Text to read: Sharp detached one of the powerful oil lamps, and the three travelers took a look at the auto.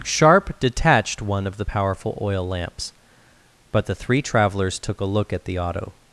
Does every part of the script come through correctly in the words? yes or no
no